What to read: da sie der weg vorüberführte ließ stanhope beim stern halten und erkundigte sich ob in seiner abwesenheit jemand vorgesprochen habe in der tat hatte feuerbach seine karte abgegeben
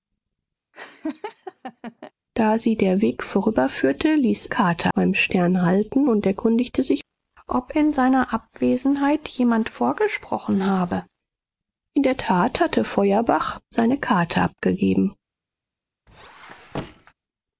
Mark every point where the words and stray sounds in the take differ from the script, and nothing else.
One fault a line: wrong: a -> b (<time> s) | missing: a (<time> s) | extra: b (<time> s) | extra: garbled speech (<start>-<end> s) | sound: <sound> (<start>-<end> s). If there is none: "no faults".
sound: laugh (0.7-2.1 s)
wrong: stanhope -> karte (4.5 s)
sound: squeak (16.1-17.1 s)